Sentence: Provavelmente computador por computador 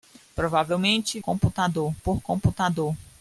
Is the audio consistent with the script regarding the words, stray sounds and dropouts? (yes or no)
yes